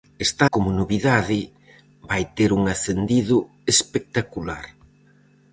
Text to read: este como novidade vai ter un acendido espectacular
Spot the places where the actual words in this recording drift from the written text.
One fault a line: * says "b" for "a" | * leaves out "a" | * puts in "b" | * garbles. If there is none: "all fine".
all fine